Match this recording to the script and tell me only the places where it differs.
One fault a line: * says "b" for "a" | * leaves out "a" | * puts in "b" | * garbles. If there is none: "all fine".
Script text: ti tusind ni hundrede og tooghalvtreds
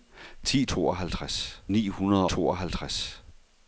* says "tooghalvtreds" for "tusind"
* leaves out "og"